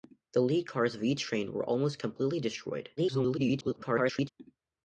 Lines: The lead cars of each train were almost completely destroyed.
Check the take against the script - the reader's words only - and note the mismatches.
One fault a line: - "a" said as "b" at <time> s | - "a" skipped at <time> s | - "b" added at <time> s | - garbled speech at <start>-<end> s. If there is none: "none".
- garbled speech at 3.0-4.3 s